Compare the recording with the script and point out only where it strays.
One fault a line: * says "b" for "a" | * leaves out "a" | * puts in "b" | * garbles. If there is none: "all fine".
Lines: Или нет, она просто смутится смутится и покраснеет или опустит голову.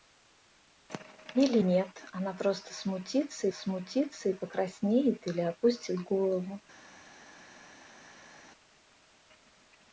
all fine